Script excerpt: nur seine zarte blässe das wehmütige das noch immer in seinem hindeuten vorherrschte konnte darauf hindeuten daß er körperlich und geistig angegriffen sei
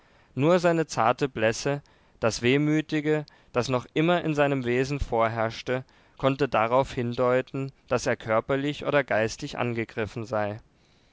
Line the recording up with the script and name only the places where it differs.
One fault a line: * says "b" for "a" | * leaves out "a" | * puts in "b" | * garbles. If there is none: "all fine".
* says "wesen" for "hindeuten"
* says "oder" for "und"